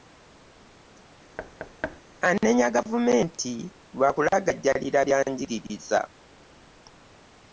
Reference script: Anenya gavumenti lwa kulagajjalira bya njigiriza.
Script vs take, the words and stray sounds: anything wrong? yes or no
yes